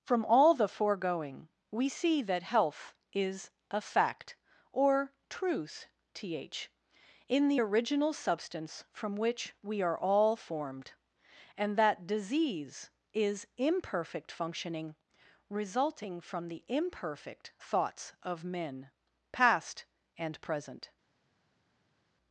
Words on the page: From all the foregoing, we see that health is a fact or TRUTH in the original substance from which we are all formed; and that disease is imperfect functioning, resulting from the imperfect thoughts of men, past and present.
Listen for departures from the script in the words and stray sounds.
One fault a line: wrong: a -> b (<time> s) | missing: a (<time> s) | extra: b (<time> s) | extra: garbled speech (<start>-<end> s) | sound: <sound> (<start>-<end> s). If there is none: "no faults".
extra: th (6.1 s)